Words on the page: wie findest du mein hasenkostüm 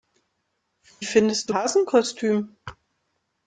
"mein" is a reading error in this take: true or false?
true